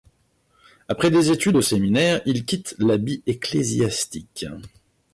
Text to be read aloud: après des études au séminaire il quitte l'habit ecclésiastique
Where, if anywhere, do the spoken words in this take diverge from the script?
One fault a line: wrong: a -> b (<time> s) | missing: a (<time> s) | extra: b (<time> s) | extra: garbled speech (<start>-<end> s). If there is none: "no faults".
no faults